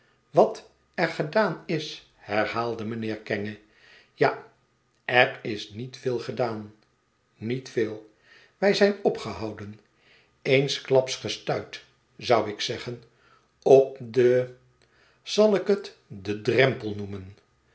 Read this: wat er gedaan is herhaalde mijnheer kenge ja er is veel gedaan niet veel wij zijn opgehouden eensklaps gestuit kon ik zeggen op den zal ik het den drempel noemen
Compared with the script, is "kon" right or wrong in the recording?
wrong